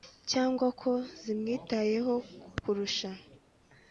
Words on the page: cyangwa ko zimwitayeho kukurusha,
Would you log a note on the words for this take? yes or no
no